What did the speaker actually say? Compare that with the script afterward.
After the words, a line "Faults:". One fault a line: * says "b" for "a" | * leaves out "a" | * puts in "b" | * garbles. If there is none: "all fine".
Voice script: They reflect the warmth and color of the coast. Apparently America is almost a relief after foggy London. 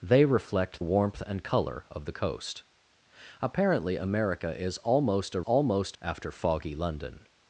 They reflect warmth and color of the coast. Apparently America is almost a almost after foggy London.
Faults:
* leaves out "the"
* says "almost" for "relief"